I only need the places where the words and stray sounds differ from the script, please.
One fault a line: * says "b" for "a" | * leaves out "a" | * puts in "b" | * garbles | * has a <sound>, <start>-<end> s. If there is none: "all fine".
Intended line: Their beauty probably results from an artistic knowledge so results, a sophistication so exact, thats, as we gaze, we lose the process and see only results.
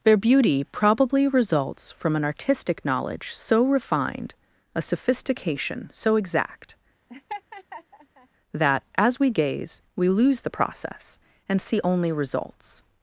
* says "refined" for "results"
* has a laugh, 7.1-8.3 s
* says "that" for "thats"